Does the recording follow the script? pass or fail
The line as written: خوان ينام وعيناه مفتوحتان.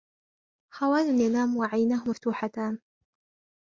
pass